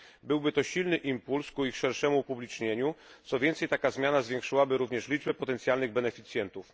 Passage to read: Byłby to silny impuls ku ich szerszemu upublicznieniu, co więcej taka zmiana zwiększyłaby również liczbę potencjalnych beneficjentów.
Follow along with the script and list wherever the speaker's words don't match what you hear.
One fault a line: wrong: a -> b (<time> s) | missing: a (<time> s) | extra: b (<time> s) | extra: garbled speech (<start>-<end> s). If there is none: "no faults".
no faults